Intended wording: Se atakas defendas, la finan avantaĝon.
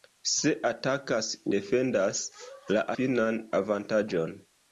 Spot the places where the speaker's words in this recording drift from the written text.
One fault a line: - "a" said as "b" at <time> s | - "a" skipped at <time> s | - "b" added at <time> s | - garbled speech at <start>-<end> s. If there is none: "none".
none